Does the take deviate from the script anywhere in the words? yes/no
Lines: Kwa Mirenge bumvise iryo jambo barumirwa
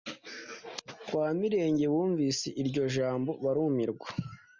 no